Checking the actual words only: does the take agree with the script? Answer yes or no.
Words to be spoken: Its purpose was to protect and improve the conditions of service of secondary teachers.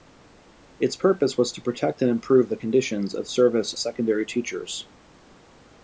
no